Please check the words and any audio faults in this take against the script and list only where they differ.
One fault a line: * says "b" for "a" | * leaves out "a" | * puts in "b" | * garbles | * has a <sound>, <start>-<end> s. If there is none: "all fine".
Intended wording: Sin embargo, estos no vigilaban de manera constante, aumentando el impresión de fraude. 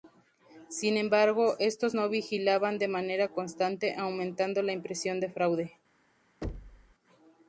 * says "la" for "el"
* has a thud, 6.4-6.9 s